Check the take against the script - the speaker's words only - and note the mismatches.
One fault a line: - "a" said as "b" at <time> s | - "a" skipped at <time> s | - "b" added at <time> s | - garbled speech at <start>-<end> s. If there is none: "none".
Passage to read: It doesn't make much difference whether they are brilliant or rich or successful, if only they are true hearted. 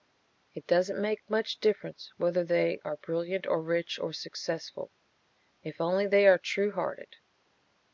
none